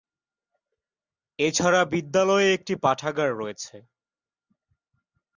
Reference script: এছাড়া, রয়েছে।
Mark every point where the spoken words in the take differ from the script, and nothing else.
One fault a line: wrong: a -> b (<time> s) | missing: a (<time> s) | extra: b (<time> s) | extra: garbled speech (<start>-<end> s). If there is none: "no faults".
extra: বিদ্যালয়ে একটি পাঠাগার (1.9 s)